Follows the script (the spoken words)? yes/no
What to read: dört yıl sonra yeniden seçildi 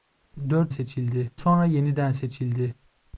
no